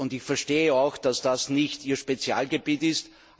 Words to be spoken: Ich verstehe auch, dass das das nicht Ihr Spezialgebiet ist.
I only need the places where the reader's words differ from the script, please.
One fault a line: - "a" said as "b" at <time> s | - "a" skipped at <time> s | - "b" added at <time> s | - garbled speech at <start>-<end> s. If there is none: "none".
- "das" skipped at 1.5 s